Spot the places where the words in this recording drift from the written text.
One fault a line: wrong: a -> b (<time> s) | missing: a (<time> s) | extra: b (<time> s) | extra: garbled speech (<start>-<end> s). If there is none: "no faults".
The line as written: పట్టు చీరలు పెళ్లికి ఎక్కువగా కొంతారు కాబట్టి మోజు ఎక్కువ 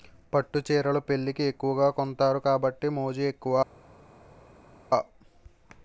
no faults